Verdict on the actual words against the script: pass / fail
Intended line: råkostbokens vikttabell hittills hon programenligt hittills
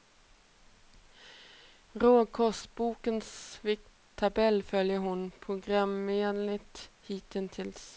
fail